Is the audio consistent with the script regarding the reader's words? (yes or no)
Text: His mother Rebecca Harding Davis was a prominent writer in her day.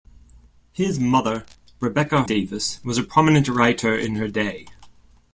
no